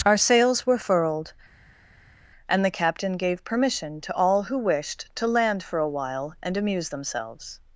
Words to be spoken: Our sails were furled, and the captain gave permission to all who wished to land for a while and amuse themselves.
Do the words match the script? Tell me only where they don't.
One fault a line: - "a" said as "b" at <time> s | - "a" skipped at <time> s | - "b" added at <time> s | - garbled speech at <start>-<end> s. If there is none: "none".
none